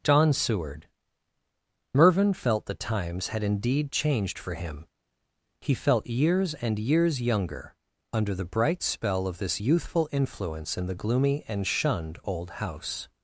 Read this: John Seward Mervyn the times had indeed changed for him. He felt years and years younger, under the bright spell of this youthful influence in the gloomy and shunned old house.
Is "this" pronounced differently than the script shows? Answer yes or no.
no